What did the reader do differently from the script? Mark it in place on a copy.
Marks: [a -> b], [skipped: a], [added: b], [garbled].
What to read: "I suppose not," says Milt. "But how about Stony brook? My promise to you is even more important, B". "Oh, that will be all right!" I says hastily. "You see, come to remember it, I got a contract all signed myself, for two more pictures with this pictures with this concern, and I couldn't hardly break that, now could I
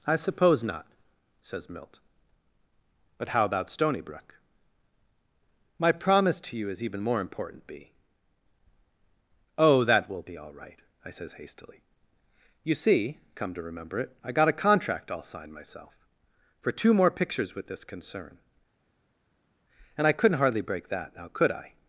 "I suppose not," says Milt. "But how about Stony brook? My promise to you is even more important, B". "Oh, that will be all right!" I says hastily. "You see, come to remember it, I got a contract all signed myself, for two more pictures with this [skipped: pictures with this] concern, and I couldn't hardly break that, now could I